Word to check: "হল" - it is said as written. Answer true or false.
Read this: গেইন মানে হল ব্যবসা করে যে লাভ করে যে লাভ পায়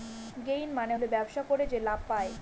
true